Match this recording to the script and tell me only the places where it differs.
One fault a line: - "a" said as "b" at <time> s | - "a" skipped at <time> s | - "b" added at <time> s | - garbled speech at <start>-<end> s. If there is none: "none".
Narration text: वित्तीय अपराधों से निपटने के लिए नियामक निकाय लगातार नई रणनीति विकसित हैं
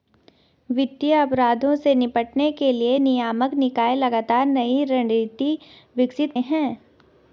none